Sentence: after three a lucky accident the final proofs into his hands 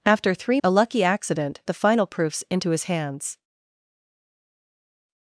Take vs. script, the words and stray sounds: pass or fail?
pass